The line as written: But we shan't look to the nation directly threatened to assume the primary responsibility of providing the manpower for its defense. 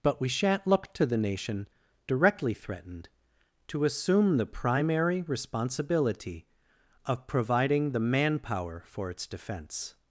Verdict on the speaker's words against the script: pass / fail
pass